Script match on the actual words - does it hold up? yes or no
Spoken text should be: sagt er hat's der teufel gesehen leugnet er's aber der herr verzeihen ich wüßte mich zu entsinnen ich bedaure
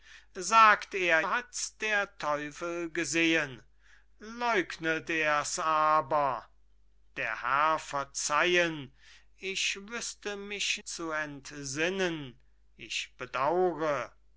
yes